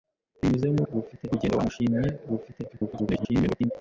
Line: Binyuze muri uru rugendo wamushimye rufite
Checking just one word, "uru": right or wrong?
wrong